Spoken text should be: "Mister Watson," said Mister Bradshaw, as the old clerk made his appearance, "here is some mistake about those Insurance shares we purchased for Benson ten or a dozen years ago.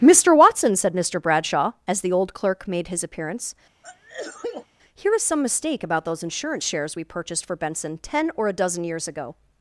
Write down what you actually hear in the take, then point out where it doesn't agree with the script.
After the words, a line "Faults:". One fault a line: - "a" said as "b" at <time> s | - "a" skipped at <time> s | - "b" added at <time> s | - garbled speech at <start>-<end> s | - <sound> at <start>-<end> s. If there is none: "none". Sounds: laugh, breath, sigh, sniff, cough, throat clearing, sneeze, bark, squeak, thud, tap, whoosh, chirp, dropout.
"Mister Watson," said Mister Bradshaw, as the old clerk made his appearance, "here is some mistake about those Insurance shares we purchased for Benson ten or a dozen years ago.
Faults:
- sneeze at 3.8-4.7 s